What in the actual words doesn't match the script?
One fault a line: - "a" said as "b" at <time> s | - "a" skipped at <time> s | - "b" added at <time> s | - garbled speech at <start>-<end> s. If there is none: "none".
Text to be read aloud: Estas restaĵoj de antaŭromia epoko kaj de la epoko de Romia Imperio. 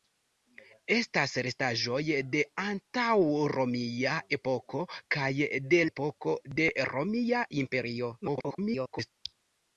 - "la" skipped at 5.8 s
- garbled speech at 8.2-9.1 s